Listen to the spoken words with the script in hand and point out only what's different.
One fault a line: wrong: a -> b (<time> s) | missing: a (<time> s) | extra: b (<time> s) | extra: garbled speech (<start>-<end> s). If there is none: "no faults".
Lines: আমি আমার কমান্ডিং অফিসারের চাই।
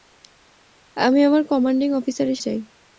no faults